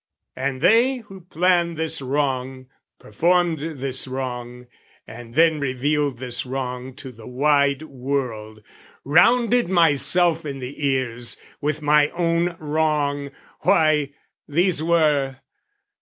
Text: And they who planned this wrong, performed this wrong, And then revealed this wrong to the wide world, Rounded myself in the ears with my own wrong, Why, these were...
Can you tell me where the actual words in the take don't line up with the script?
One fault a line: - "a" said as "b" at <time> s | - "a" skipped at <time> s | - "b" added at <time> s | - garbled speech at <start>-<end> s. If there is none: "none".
none